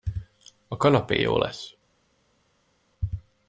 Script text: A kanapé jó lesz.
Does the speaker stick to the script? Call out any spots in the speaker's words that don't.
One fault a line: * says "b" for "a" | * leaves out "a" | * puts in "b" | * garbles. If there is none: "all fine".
all fine